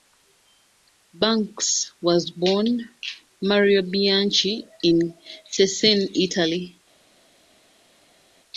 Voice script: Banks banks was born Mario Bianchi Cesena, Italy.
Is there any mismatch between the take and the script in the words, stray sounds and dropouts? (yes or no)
yes